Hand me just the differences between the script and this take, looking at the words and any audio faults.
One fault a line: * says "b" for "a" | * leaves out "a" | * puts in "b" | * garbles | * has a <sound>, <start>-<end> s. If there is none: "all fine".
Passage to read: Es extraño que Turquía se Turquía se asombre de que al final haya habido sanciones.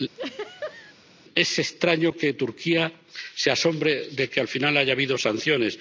* has a laugh, 0.1-0.9 s
* leaves out "Turquía se"